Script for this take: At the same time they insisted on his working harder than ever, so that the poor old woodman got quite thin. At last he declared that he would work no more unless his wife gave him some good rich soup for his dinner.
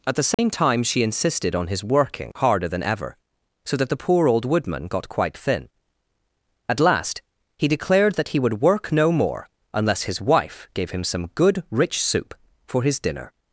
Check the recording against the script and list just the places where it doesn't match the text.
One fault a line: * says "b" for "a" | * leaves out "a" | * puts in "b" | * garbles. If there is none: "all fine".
* says "she" for "they"